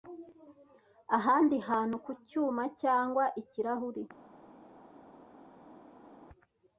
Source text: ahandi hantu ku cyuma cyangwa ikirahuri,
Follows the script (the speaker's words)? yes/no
yes